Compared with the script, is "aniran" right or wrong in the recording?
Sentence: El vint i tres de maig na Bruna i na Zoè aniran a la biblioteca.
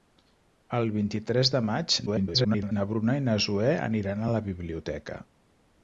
right